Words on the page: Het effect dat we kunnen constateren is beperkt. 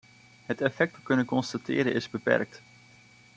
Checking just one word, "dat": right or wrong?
wrong